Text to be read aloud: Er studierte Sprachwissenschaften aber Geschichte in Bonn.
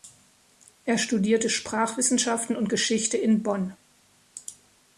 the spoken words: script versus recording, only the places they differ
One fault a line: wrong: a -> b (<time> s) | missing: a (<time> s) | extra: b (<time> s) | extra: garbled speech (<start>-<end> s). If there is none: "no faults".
wrong: aber -> und (2.5 s)